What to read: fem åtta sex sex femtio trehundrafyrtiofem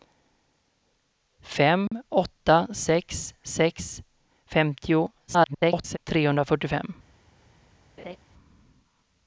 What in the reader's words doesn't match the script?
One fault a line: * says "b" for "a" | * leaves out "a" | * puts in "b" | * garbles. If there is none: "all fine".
* garbles